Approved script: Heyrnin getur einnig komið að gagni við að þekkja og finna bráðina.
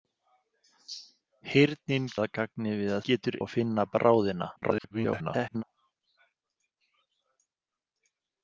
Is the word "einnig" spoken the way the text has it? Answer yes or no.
no